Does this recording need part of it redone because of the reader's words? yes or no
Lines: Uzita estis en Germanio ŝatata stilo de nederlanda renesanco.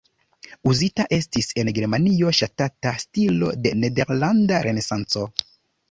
no